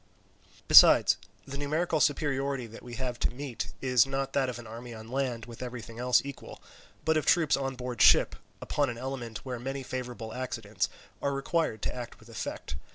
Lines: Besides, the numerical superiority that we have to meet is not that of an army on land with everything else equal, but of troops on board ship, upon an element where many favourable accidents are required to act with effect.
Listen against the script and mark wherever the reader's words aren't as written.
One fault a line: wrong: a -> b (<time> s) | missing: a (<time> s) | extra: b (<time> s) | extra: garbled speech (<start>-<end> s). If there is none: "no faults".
no faults